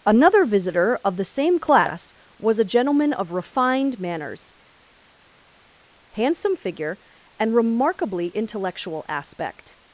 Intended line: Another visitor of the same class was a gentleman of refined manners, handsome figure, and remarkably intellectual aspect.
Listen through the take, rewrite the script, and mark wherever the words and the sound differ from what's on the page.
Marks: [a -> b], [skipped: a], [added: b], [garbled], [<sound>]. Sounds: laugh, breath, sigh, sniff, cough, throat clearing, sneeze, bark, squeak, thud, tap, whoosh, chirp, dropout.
Another visitor of the same class was a gentleman of refined manners, handsome figure, and remarkably intellectual aspect.